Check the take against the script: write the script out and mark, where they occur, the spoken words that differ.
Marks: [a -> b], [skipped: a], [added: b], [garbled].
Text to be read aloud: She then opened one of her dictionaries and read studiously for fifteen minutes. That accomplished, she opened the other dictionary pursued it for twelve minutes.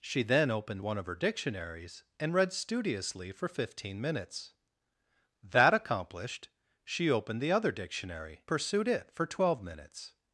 She then opened one of her dictionaries and read studiously for fifteen minutes. That accomplished, she opened the other dictionary pursued it for twelve minutes.